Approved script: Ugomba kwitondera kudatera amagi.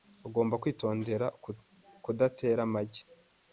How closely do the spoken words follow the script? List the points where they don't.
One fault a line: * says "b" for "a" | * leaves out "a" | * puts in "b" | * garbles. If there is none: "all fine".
all fine